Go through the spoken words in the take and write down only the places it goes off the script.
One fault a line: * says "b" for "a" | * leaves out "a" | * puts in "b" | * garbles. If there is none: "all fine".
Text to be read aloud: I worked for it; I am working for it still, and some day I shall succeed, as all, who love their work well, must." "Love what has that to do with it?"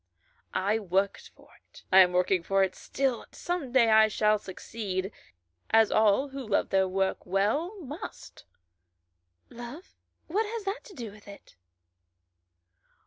* leaves out "and"